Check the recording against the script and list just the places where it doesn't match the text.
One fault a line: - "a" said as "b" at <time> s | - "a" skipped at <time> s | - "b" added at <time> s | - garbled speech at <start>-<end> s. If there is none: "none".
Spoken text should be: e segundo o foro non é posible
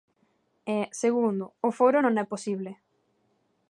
none